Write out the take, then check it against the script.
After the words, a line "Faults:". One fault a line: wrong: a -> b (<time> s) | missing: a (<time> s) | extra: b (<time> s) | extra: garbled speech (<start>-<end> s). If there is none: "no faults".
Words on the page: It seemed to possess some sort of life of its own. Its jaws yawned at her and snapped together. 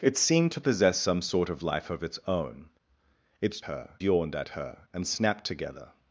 It seemed to possess some sort of life of its own. Its her yawned at her and snapped together.
Faults:
wrong: jaws -> her (3.6 s)